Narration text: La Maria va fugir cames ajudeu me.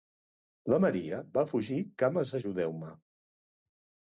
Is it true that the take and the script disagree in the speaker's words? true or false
false